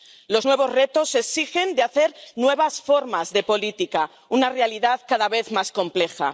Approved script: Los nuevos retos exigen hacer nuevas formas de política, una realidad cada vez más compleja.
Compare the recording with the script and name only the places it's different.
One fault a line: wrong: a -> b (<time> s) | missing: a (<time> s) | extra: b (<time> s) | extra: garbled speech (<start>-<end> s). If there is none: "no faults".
no faults